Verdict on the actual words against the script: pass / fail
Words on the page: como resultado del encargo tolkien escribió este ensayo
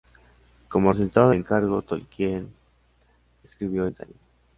fail